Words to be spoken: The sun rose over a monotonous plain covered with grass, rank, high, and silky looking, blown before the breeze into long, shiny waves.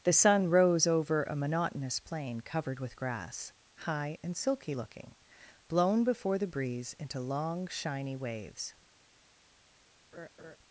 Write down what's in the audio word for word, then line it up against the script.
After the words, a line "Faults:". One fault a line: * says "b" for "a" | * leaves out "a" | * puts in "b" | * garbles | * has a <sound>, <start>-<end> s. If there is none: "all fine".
The sun rose over a monotonous plain covered with grass, high, and silky looking, blown before the breeze into long, shiny waves.
Faults:
* leaves out "rank"
* has a laugh, 10.1-10.6 s